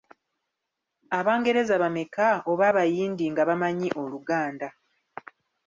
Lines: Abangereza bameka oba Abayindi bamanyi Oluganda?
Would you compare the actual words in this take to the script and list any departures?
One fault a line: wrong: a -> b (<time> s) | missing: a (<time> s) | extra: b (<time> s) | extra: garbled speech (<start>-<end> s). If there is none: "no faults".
extra: nga (3.3 s)